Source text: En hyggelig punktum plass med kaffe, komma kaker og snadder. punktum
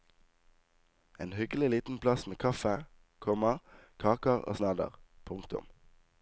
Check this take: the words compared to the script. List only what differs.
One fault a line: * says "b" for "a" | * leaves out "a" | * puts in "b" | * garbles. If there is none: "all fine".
* says "liten" for "punktum"